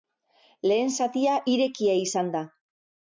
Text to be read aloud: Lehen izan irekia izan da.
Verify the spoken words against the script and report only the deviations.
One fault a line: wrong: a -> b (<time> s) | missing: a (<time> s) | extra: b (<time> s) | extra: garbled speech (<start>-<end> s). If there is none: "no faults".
wrong: izan -> zatia (1.0 s)